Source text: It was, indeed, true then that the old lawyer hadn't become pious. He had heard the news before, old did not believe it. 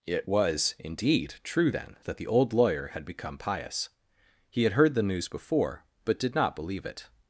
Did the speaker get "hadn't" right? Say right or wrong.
wrong